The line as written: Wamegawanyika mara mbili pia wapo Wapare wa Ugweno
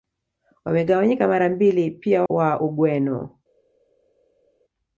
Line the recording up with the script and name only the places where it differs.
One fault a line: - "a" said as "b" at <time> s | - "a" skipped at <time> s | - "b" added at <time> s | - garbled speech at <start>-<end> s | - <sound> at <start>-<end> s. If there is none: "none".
- "wapo Wapare" skipped at 2.2 s